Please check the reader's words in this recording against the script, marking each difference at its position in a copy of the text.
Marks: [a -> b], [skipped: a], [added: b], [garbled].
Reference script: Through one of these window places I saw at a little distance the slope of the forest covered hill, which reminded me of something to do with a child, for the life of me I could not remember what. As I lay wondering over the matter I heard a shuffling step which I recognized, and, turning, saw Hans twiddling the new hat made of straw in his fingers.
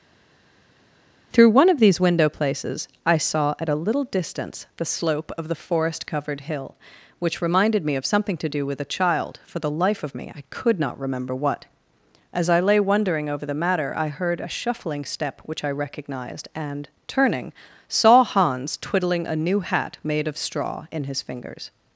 Through one of these window places I saw at a little distance the slope of the forest covered hill, which reminded me of something to do with a child, for the life of me I could not remember what. As I lay wondering over the matter I heard a shuffling step which I recognized, and, turning, saw Hans twiddling [the -> a] new hat made of straw in his fingers.